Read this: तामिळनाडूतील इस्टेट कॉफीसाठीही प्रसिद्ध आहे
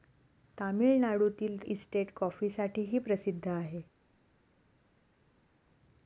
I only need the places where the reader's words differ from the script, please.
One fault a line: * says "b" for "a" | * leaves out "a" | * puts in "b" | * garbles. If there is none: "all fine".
all fine